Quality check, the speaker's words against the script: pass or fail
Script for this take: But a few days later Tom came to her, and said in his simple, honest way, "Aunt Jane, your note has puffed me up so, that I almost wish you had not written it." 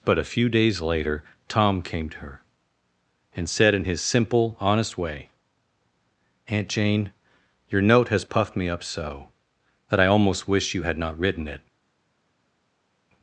pass